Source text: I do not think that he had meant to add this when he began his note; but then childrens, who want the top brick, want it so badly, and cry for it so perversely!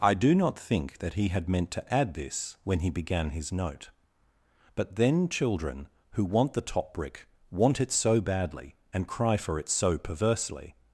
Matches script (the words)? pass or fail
fail